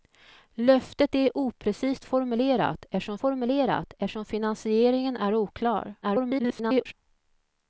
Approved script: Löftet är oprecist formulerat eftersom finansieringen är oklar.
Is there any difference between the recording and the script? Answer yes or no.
yes